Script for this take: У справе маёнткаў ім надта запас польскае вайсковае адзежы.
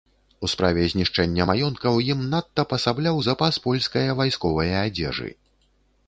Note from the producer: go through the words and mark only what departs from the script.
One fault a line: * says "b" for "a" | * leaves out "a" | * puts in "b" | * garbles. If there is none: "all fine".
* puts in "знішчэння"
* puts in "пасабляў"